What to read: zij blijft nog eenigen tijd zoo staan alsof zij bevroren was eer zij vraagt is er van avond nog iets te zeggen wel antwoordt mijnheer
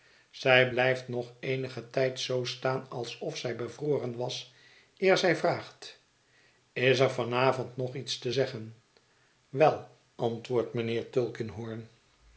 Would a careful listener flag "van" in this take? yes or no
no